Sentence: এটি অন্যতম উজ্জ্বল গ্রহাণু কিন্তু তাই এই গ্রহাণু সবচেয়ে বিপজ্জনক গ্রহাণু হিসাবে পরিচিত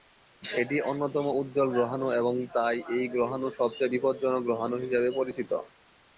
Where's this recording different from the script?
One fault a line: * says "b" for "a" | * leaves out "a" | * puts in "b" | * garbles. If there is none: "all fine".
* says "এবং" for "কিন্তু"